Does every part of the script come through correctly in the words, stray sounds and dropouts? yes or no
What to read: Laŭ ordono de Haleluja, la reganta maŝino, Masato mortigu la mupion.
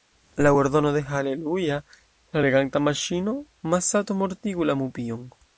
yes